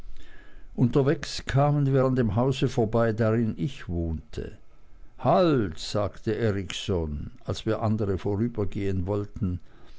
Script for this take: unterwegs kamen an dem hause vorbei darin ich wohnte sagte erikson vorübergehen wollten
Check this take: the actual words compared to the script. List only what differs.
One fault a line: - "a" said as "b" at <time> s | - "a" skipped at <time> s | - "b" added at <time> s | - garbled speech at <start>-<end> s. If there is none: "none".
- "wir" added at 1.9 s
- "halt" added at 5.2 s
- "als wir andere" added at 7.4 s